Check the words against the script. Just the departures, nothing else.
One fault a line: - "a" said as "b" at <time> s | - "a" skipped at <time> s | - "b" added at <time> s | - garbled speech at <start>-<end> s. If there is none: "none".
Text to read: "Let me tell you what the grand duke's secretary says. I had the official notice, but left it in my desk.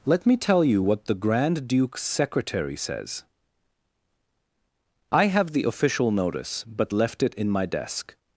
- "had" said as "have" at 5.3 s